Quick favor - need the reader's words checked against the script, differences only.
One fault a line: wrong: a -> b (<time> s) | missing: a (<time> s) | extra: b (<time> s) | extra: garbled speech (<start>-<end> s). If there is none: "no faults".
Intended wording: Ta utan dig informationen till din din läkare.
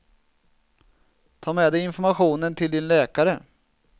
wrong: utan -> med (1.5 s)
missing: din (2.9 s)